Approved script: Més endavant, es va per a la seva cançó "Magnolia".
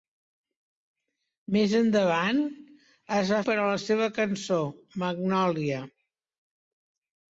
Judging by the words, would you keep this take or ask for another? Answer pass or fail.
pass